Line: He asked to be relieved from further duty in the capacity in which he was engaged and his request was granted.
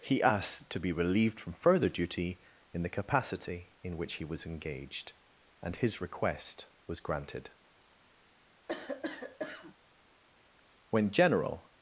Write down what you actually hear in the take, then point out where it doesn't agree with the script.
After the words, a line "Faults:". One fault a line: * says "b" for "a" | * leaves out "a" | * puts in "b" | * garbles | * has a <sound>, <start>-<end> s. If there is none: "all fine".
He asked to be relieved from further duty in the capacity in which he was engaged and his request was granted. When General
Faults:
* has a cough, 8.7-9.8 s
* puts in "When General"